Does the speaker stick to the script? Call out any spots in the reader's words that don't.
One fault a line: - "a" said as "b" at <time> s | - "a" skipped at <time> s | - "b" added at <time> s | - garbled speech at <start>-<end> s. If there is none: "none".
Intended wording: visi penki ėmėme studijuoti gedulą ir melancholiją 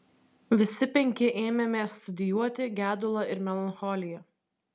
none